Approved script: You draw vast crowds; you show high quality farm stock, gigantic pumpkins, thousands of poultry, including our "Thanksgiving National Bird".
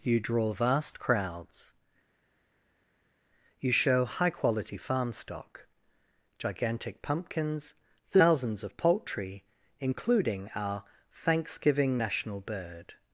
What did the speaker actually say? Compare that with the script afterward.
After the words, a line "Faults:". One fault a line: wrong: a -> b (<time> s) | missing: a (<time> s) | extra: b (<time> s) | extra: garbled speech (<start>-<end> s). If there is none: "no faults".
You draw vast crowds; you show high quality farm stock, gigantic pumpkins, thousands of poultry, including our "Thanksgiving National Bird".
Faults:
no faults